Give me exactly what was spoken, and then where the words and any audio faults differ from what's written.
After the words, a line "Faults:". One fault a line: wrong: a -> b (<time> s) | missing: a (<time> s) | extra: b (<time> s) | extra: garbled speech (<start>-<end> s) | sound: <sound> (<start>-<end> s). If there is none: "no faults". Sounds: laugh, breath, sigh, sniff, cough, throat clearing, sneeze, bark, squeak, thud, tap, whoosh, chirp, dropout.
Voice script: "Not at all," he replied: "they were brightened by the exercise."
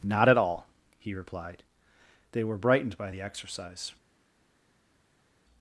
"Not at all," he replied: "they were brightened by the exercise."
Faults:
no faults